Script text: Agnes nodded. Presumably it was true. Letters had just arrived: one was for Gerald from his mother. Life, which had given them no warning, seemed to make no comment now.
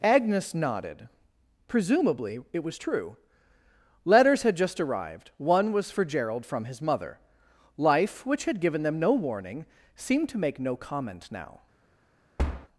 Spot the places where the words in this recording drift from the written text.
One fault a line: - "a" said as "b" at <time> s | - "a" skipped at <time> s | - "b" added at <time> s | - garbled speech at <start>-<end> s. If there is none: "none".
none